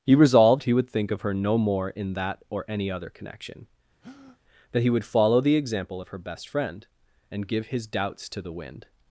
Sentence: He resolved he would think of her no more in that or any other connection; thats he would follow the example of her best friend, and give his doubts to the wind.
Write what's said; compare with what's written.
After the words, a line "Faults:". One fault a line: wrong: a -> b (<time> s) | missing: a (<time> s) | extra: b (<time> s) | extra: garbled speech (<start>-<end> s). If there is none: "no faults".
He resolved he would think of her no more in that or any other connection; that he would follow the example of her best friend, and give his doubts to the wind.
Faults:
wrong: thats -> that (4.7 s)